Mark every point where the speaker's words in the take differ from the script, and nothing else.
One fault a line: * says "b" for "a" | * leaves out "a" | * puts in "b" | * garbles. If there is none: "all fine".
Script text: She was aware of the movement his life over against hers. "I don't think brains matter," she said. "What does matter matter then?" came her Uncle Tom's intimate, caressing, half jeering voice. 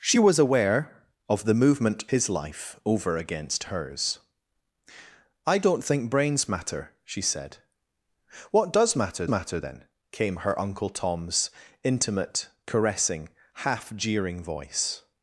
all fine